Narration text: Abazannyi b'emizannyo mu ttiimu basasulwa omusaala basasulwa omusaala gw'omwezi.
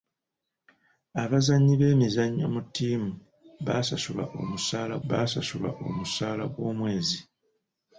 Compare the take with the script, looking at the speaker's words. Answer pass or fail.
pass